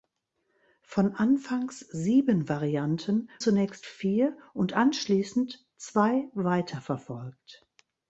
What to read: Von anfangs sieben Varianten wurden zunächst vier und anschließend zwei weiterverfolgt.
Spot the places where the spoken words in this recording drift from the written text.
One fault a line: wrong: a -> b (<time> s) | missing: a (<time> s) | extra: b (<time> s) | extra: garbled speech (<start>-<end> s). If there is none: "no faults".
missing: wurden (3.3 s)